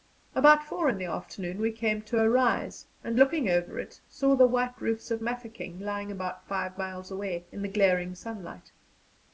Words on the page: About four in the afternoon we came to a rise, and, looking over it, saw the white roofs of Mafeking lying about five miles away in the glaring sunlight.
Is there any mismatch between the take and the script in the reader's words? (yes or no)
no